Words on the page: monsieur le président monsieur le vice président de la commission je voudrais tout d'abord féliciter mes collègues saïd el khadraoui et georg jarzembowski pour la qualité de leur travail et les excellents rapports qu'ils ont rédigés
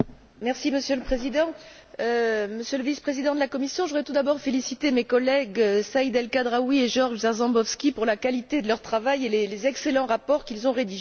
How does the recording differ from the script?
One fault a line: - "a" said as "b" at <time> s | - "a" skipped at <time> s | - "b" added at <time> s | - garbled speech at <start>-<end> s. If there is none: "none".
none